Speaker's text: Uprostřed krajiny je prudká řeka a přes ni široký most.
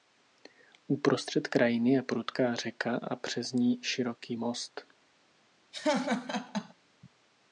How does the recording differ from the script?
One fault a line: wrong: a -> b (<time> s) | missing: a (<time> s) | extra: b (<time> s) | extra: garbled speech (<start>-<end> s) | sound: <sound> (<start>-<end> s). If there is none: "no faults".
sound: laugh (5.7-6.7 s)